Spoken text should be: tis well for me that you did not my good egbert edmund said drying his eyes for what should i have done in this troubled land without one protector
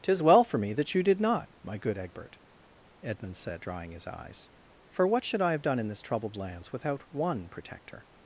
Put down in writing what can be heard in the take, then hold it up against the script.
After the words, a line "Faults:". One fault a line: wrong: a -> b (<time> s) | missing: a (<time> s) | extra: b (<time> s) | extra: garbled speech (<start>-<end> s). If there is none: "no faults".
tis well for me that you did not my good egbert edmund said drying his eyes for what should i have done in this troubled lands without one protector
Faults:
wrong: land -> lands (6.3 s)